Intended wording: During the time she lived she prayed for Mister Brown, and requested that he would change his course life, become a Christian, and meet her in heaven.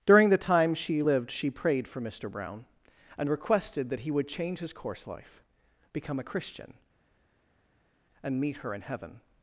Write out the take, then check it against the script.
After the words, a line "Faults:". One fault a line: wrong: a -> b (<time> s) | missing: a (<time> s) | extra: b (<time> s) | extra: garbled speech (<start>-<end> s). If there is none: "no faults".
During the time she lived she prayed for Mister Brown, and requested that he would change his course life, become a Christian, and meet her in heaven.
Faults:
no faults